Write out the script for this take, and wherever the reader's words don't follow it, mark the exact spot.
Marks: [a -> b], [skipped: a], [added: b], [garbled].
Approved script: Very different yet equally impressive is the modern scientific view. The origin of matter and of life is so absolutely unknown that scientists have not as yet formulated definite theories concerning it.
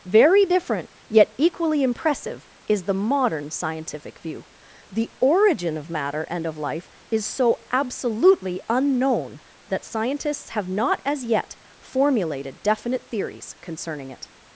Very different yet equally impressive is the modern scientific view. The origin of matter and of life is so absolutely unknown that scientists have not as yet formulated definite theories concerning it.